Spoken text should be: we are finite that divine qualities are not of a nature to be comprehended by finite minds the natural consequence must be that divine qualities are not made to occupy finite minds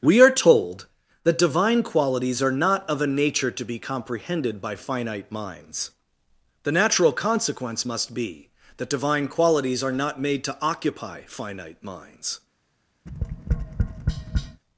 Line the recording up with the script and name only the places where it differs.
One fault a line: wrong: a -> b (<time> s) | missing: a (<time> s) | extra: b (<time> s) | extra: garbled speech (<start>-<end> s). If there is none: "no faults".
wrong: finite -> told (0.3 s)